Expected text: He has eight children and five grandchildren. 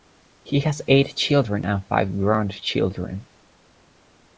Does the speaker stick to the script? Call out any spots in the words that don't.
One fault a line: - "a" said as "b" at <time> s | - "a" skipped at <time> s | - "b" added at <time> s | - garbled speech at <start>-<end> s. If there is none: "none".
none